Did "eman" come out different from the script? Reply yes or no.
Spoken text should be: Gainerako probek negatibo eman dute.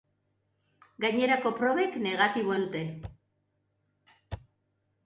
yes